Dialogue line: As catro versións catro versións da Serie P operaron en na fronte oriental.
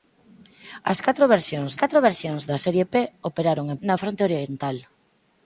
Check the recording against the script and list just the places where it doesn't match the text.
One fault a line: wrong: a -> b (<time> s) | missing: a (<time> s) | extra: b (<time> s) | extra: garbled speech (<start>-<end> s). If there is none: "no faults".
no faults